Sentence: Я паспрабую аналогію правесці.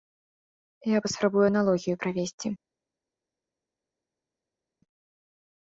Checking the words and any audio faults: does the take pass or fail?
pass